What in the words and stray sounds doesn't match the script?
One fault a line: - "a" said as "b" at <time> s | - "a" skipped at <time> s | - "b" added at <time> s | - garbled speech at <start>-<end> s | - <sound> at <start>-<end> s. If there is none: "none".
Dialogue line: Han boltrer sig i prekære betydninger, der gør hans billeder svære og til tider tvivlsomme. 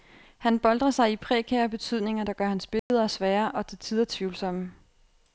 - dropout at 2.8-2.9 s